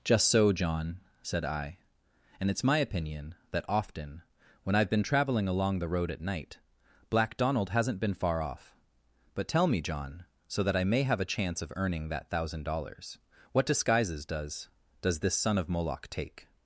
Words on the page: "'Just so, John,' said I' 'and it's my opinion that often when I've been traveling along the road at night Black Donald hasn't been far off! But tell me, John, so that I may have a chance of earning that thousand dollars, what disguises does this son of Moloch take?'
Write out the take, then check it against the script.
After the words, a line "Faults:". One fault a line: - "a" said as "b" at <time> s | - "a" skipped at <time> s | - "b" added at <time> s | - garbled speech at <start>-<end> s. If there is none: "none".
"'Just so, John,' said I' 'and it's my opinion that often when I've been traveling along the road at night Black Donald hasn't been far off! But tell me, John, so that I may have a chance of earning that thousand dollars, what disguises does does this son of Moloch take?'
Faults:
- "does" added at 15.0 s